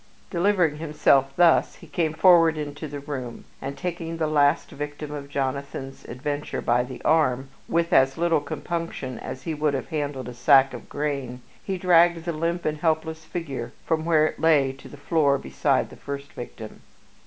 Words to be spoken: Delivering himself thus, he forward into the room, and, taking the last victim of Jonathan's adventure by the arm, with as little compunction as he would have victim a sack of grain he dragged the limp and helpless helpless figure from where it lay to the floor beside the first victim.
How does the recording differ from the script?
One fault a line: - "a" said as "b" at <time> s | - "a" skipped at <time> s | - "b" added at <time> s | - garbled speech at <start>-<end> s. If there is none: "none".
- "came" added at 1.9 s
- "victim" said as "handled" at 9.9 s
- "helpless" skipped at 13.2 s